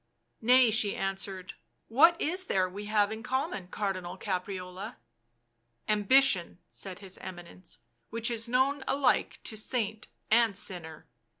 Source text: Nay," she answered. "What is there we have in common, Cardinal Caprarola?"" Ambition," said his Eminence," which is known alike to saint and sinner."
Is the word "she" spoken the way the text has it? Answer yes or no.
yes